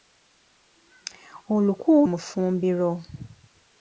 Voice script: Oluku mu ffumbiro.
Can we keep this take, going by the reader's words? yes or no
yes